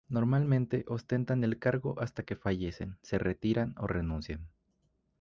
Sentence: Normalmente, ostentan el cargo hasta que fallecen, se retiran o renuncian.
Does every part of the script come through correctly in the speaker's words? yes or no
yes